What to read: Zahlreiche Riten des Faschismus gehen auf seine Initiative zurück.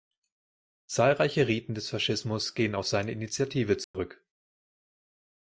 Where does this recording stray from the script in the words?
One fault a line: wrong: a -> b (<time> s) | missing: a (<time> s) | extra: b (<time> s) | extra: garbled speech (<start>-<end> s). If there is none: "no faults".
no faults